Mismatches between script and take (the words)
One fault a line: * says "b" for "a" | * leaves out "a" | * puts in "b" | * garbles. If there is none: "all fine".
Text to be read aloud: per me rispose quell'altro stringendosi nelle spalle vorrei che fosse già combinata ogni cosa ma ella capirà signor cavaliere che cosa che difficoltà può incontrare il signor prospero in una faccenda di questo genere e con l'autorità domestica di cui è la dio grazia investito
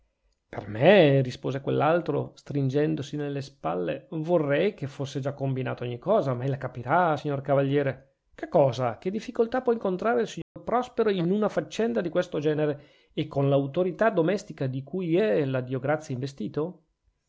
all fine